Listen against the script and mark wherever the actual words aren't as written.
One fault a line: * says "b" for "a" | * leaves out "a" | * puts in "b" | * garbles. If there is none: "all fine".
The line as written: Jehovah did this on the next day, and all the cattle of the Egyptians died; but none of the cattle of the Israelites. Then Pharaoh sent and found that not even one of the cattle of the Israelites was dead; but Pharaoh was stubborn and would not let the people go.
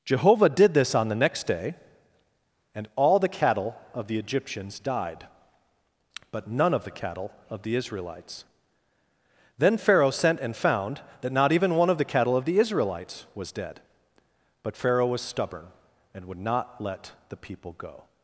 all fine